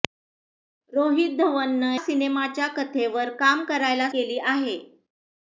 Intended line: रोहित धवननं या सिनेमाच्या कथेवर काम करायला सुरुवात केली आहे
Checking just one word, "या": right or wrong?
wrong